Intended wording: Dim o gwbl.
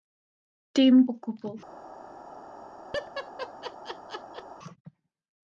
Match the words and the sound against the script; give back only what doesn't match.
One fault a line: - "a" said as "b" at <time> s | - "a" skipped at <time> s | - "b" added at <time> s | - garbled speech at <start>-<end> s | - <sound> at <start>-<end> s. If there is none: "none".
- laugh at 2.9-4.4 s